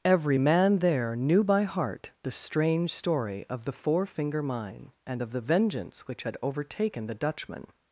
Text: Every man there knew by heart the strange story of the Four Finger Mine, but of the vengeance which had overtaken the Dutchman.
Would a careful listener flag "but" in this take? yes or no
yes